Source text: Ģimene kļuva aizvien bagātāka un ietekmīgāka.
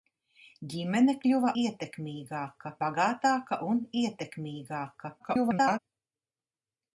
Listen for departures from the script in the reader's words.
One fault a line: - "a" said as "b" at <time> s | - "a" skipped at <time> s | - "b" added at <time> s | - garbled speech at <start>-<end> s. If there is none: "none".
- "aizvien" said as "ietekmīgāka" at 1.6 s
- garbled speech at 5.2-5.8 s